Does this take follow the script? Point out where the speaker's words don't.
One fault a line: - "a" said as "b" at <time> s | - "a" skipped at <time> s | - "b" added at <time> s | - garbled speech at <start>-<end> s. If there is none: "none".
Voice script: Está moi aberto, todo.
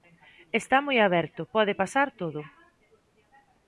- "pode pasar" added at 1.6 s